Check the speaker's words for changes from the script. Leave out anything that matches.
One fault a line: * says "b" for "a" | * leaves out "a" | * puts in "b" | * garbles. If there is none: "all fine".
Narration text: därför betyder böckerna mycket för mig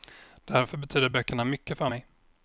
all fine